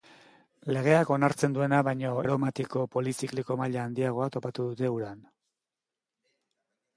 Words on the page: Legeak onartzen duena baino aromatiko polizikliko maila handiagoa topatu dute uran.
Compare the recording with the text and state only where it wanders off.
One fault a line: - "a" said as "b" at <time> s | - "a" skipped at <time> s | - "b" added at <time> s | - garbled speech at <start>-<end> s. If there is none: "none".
none